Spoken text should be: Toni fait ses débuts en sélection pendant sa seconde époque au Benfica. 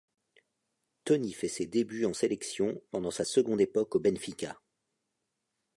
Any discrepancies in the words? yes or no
no